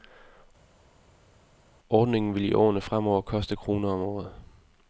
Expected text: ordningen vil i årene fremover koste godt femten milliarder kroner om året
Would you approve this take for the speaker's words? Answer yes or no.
no